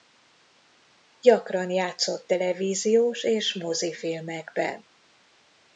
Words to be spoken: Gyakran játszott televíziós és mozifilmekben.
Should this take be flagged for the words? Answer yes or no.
no